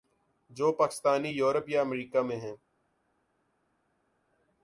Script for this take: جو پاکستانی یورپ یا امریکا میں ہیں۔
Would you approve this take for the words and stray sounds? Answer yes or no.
yes